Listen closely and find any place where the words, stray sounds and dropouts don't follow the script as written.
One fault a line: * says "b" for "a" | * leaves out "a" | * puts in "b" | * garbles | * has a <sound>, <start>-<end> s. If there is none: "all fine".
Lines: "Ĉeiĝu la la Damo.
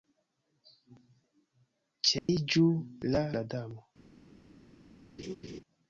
* has a dropout, 2.2-2.3 s
* has a laugh, 5.2-5.6 s